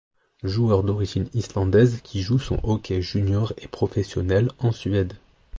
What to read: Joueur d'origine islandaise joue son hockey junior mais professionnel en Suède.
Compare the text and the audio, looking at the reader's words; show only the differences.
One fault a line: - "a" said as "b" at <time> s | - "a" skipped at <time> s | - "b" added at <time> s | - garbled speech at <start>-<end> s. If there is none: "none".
- "qui" added at 2.0 s
- "mais" said as "et" at 3.6 s